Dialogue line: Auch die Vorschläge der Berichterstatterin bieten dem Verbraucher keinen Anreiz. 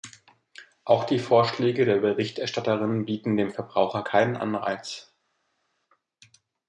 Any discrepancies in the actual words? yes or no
no